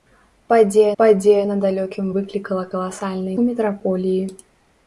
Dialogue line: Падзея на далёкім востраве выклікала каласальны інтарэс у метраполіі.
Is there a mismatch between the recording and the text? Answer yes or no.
yes